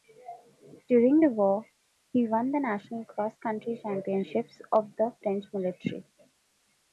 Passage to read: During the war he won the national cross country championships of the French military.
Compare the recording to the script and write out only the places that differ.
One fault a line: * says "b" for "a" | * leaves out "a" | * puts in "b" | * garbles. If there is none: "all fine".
all fine